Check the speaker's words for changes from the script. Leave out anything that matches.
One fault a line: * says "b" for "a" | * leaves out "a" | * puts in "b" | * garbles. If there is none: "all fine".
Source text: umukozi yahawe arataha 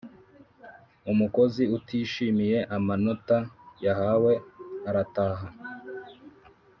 * puts in "utishimiye amanota"